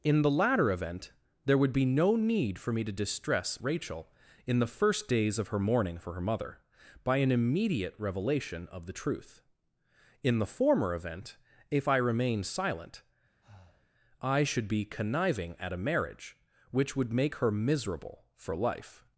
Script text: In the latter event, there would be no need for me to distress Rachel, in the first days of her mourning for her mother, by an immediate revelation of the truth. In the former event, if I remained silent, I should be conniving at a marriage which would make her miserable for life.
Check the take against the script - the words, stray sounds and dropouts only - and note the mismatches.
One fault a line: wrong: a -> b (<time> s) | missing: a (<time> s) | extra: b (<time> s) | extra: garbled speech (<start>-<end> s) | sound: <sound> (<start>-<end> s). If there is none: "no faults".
sound: breath (13.4-13.9 s)